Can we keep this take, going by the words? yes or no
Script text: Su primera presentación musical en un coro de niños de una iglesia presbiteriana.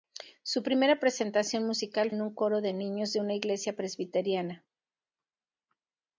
yes